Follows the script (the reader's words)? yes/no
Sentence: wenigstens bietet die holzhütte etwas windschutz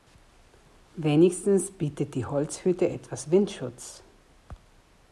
yes